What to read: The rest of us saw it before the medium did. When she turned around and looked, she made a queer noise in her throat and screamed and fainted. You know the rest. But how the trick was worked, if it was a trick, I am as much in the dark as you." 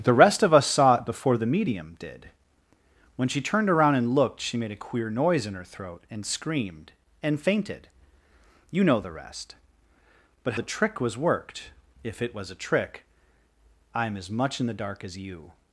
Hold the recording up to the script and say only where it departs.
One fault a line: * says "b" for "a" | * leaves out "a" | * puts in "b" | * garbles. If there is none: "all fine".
* leaves out "how"